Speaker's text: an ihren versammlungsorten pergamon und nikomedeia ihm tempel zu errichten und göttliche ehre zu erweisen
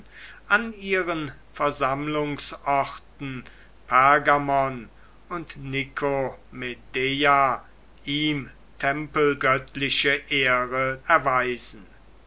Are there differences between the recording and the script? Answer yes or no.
yes